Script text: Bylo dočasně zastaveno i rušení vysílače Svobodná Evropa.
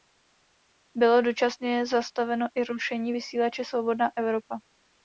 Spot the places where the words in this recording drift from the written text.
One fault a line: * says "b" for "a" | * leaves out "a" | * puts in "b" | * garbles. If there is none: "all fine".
all fine